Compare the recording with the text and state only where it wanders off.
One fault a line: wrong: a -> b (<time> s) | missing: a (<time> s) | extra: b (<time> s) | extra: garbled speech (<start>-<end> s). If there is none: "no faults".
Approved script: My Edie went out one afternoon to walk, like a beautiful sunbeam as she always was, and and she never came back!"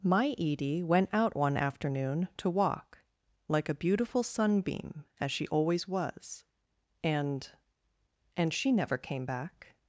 no faults